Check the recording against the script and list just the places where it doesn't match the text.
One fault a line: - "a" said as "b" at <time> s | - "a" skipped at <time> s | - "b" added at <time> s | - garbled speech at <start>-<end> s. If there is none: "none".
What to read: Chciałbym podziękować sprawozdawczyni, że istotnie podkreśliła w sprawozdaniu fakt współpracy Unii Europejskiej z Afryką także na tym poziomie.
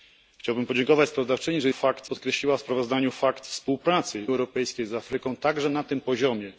- "istotnie" said as "fakt" at 1.7 s
- "Unii" skipped at 4.3 s